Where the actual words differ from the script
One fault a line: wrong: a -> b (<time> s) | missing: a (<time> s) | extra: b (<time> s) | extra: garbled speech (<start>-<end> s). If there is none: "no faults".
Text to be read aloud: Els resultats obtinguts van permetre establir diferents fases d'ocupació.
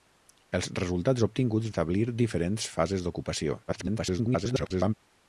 missing: van permetre (1.7 s)
extra: garbled speech (3.7-4.9 s)